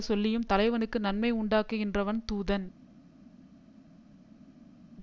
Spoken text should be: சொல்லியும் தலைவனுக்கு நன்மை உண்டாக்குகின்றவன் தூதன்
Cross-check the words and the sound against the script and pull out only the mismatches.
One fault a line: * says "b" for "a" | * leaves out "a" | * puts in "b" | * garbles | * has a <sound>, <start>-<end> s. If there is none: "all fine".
all fine